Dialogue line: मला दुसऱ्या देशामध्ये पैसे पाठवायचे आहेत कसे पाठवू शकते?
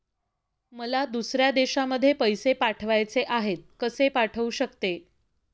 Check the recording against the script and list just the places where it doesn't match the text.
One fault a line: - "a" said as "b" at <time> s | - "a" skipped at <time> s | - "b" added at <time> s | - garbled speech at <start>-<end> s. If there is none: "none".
none